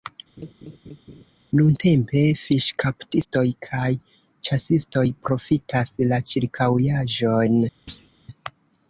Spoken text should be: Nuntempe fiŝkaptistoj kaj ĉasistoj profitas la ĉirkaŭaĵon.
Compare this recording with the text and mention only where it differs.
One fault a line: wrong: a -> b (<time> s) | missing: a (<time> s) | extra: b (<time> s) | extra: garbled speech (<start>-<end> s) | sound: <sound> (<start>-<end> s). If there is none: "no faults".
sound: laugh (0.4-1.2 s)
sound: thud (7.9-8.1 s)